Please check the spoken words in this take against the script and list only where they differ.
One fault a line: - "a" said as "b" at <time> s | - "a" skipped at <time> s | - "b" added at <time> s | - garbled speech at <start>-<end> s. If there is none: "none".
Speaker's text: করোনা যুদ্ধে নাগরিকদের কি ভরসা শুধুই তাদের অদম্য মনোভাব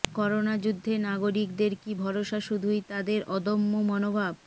none